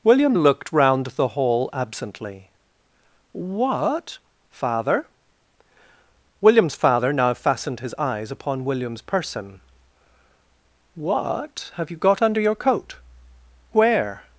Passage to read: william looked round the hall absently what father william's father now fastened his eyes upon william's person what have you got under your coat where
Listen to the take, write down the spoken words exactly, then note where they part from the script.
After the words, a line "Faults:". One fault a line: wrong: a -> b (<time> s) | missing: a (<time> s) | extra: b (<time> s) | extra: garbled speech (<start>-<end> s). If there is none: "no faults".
william looked round the hall absently what father william's father now fastened his eyes upon william's person what have you got under your coat where
Faults:
no faults